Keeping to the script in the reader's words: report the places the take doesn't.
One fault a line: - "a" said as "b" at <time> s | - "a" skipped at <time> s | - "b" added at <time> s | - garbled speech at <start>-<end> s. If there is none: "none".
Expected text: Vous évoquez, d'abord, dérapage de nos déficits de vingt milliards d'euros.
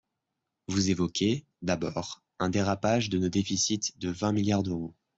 - "un" added at 2.4 s